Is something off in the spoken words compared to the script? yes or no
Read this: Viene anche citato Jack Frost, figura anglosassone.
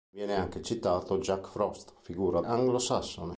no